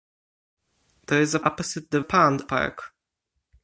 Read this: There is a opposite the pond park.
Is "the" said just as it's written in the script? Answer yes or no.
yes